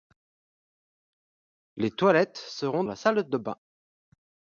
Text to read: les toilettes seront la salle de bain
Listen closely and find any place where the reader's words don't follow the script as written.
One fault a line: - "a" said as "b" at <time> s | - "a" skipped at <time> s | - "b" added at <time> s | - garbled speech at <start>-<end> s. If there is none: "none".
none